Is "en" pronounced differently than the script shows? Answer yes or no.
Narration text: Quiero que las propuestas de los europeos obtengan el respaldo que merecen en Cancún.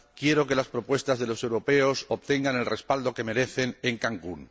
no